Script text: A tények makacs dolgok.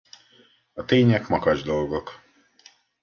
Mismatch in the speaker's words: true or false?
false